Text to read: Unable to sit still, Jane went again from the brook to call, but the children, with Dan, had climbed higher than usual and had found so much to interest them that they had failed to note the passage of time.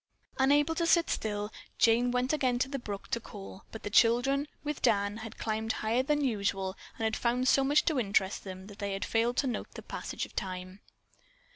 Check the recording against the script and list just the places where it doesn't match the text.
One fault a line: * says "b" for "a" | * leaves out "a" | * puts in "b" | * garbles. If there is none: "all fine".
* says "to" for "from"